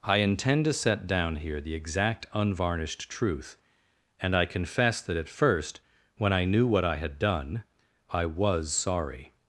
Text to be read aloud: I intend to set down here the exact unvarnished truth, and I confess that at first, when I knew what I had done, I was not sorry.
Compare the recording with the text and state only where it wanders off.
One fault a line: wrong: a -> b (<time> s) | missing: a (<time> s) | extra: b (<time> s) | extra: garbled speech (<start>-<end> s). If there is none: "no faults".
missing: not (8.7 s)